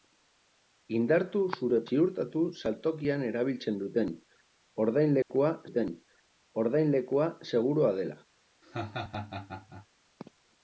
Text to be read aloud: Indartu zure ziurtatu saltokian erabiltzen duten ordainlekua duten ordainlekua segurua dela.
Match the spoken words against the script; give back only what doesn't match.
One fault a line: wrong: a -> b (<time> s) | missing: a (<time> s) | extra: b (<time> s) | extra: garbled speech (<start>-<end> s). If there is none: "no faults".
no faults